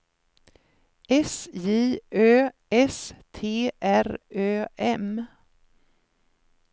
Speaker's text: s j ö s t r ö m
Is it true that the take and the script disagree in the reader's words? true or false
false